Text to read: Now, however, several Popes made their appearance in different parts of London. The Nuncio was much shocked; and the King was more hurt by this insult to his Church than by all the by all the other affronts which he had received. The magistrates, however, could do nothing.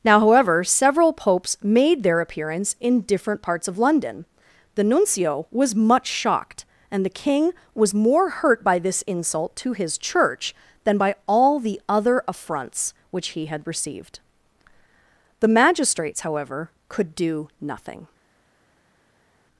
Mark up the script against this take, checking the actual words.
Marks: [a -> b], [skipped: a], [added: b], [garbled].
Now, however, several Popes made their appearance in different parts of London. The Nuncio was much shocked; and the King was more hurt by this insult to his Church than by all the [skipped: by all the] other affronts which he had received. The magistrates, however, could do nothing.